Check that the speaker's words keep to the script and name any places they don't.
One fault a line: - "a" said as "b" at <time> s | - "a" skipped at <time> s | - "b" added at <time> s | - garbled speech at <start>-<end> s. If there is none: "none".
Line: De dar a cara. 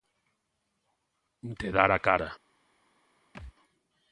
none